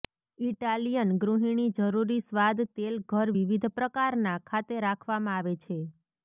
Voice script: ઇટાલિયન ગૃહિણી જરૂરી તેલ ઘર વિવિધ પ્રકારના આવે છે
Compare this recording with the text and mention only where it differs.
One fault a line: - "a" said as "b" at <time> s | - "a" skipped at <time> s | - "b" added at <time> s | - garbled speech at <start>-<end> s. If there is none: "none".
- "સ્વાદ" added at 2.2 s
- "ખાતે રાખવામાં" added at 4.5 s